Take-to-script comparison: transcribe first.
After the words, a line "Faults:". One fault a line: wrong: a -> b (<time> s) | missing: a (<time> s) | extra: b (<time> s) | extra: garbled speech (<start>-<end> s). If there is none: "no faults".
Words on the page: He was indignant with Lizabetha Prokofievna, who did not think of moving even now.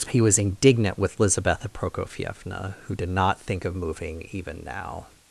He was indignant with Lizabetha Prokofievna, who did not think of moving even now.
Faults:
no faults